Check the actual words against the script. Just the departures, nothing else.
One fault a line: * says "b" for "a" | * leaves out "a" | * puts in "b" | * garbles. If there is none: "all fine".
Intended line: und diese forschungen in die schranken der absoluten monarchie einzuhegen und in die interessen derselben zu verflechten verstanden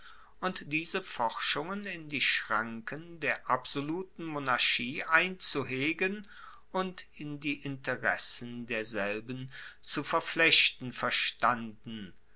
all fine